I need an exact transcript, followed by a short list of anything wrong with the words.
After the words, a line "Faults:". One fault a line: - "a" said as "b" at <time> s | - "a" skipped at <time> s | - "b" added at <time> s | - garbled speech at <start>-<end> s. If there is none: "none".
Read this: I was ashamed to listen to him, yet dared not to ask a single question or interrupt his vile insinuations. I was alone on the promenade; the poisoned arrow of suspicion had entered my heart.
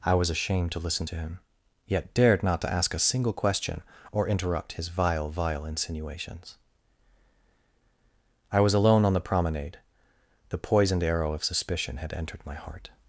I was ashamed to listen to him, yet dared not to ask a single question or interrupt his vile vile insinuations. I was alone on the promenade; the poisoned arrow of suspicion had entered my heart.
Faults:
- "vile" added at 5.3 s